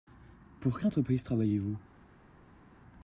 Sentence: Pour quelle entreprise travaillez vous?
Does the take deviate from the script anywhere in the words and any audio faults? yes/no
no